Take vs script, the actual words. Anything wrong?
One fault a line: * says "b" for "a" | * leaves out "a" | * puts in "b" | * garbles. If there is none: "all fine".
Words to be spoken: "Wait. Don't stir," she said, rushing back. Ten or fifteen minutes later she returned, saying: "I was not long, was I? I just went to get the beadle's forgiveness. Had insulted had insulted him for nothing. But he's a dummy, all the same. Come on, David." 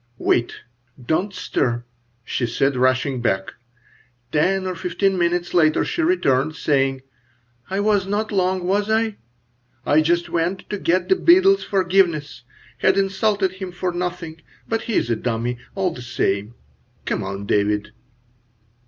* leaves out "had insulted"